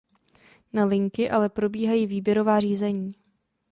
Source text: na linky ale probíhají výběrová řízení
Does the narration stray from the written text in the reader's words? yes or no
no